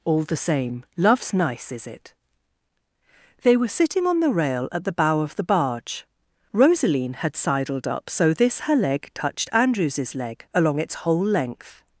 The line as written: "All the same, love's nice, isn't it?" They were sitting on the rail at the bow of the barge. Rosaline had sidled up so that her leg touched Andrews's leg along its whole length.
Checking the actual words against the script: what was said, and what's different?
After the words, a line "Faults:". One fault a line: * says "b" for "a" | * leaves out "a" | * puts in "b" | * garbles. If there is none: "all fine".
"All the same, love's nice, is it?" They were sitting on the rail at the bow of the barge. Rosaline had sidled up so this her leg touched Andrews's leg along its whole length.
Faults:
* says "is" for "isn't"
* says "this" for "that"